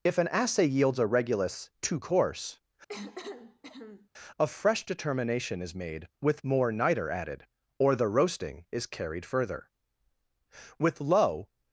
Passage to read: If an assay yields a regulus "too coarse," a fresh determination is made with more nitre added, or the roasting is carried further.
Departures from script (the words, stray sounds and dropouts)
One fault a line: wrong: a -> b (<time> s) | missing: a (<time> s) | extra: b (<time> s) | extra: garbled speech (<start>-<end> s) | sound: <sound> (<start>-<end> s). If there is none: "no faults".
sound: cough (2.9-4.1 s)
extra: With low (10.8 s)